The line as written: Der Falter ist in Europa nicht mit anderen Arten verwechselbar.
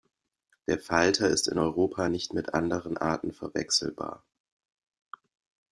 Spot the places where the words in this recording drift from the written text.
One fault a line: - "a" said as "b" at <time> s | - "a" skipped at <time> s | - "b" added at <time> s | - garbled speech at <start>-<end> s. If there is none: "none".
none